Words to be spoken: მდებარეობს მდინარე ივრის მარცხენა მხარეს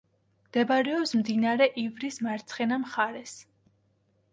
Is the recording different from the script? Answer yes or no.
no